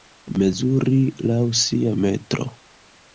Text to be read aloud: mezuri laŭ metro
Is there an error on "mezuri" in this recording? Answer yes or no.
no